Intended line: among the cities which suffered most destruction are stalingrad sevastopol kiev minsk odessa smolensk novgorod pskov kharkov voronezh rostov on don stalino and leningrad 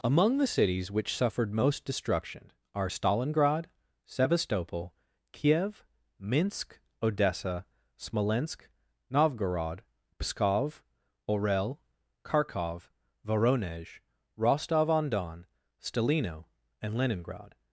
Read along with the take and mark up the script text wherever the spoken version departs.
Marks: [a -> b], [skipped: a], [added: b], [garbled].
among the cities which suffered most destruction are stalingrad sevastopol kiev minsk odessa smolensk novgorod pskov [added: orel] kharkov voronezh rostov on don stalino and leningrad